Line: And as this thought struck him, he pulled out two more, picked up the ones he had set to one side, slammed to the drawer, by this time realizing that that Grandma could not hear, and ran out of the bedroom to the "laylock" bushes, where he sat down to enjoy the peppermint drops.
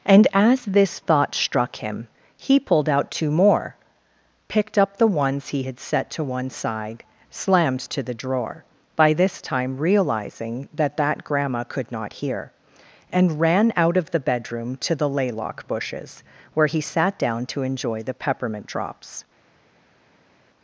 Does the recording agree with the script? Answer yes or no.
yes